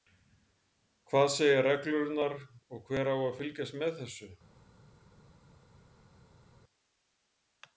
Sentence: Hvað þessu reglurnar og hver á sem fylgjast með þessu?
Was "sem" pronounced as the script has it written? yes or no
no